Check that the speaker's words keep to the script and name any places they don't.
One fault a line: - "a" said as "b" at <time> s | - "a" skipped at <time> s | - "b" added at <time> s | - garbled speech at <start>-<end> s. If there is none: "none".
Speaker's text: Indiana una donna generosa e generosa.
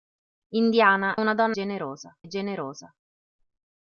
none